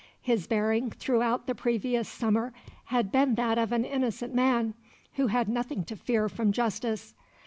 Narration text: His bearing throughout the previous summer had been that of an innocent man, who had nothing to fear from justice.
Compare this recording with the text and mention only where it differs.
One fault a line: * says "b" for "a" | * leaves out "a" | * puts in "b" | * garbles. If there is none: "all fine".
all fine